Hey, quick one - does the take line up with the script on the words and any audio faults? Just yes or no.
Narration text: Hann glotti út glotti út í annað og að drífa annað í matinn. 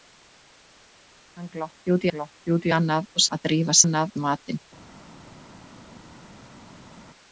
yes